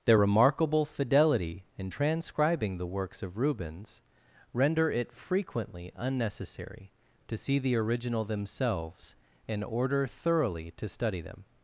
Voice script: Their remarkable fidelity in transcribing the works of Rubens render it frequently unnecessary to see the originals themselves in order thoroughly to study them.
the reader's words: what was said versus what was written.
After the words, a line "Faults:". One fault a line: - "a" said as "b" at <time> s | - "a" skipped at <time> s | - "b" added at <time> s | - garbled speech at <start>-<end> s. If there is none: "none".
Their remarkable fidelity in transcribing the works of Rubens render it frequently unnecessary to see the original themselves in order thoroughly to study them.
Faults:
- "originals" said as "original" at 7.8 s